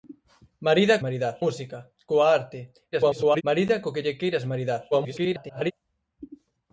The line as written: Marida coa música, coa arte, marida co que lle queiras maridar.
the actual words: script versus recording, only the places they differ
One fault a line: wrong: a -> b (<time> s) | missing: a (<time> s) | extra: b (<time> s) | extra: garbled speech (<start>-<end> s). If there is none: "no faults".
wrong: coa -> maridar (1.0 s)
extra: garbled speech (2.9-3.4 s)
extra: garbled speech (4.9-5.7 s)